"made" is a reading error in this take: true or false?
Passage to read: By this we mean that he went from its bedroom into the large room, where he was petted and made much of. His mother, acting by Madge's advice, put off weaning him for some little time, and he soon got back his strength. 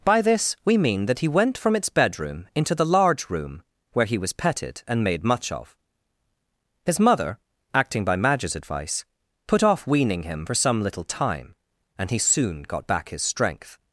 false